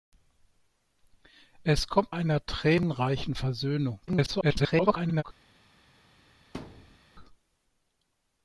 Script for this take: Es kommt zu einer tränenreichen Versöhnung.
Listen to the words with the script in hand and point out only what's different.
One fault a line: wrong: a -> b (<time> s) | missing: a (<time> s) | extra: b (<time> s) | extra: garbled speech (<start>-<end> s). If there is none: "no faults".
missing: zu (2.1 s)
extra: garbled speech (4.1-5.2 s)